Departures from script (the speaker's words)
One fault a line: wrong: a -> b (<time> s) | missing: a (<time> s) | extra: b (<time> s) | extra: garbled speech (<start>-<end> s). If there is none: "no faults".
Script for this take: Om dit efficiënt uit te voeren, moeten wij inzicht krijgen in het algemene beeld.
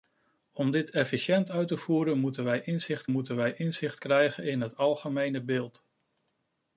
extra: moeten wij inzicht (3.1 s)